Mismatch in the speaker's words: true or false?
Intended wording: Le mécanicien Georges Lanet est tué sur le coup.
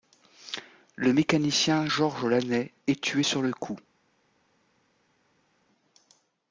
false